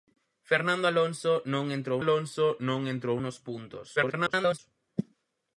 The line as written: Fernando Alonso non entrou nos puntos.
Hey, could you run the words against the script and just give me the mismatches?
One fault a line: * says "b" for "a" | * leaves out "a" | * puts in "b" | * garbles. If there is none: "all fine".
* puts in "Alonso non entrou"
* garbles